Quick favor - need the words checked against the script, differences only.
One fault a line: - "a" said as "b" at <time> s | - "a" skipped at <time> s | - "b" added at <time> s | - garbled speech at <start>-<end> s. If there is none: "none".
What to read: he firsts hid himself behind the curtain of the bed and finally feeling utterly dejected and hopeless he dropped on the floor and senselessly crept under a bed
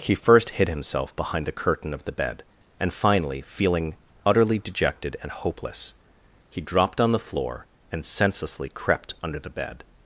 - "firsts" said as "first" at 0.1 s
- "a" said as "the" at 9.4 s